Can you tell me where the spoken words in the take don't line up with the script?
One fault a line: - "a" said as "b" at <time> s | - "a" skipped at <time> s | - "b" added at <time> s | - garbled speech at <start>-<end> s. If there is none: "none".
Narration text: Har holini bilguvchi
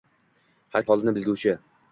none